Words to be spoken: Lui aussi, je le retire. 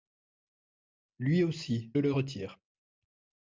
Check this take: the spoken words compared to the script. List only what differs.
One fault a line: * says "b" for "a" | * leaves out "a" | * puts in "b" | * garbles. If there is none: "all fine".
* leaves out "je"